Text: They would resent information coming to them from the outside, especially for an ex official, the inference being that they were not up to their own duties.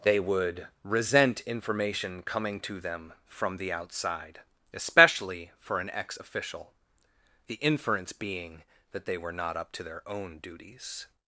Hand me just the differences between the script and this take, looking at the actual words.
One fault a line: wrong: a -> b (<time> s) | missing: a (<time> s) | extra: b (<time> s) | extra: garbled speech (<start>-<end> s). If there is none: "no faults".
no faults